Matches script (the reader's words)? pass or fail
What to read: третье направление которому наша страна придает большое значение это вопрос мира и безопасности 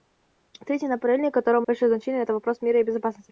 fail